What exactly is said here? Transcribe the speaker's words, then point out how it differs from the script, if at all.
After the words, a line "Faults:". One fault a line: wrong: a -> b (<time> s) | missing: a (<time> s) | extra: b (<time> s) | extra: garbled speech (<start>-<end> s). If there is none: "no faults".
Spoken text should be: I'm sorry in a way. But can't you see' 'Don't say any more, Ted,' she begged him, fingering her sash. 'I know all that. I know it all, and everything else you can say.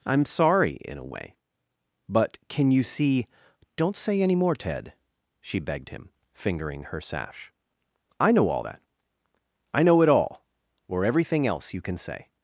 I'm sorry in a way. But can you see' 'Don't say any more, Ted,' she begged him, fingering her sash. 'I know all that. I know it all, or everything else you can say.
Faults:
wrong: can't -> can (2.5 s)
wrong: and -> or (10.9 s)